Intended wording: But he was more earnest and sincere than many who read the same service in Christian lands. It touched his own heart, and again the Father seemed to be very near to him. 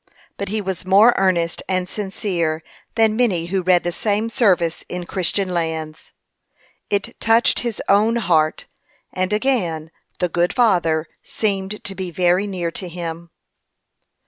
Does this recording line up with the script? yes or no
no